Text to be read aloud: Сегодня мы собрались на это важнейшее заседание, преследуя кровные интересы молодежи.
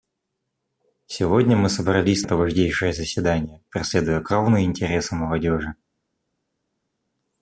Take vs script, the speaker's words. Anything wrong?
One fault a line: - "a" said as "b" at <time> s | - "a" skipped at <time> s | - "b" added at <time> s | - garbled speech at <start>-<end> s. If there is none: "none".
- "на" skipped at 2.2 s